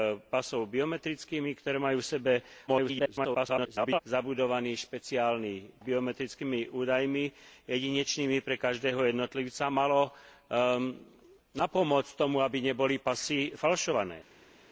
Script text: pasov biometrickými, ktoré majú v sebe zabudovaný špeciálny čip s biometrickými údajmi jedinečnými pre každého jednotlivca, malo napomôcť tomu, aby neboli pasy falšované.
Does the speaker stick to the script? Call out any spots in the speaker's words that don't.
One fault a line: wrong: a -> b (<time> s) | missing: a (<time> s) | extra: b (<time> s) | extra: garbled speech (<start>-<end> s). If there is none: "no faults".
extra: garbled speech (2.7-4.0 s)
missing: čip s (5.8 s)